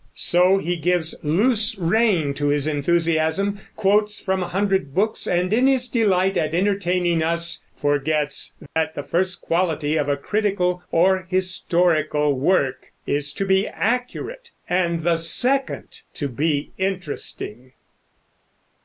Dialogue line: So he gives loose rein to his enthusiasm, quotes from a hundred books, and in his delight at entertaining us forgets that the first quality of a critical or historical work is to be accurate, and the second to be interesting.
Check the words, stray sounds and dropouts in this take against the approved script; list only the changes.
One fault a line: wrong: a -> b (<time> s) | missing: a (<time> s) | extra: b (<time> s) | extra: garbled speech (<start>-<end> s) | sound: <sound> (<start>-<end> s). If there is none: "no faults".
sound: dropout (8.7-8.8 s)